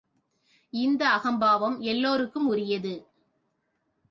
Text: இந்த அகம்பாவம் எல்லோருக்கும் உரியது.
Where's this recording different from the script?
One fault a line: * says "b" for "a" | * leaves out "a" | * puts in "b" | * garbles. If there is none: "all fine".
all fine